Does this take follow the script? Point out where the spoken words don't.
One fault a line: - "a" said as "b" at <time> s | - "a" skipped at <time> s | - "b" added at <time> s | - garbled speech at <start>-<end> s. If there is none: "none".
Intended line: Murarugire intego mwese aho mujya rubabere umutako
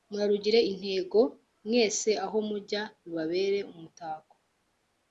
none